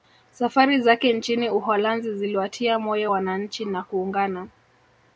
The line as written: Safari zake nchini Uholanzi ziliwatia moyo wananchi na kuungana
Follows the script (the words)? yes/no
yes